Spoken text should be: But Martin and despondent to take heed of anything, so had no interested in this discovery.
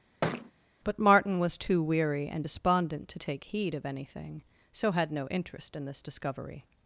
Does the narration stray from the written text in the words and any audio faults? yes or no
yes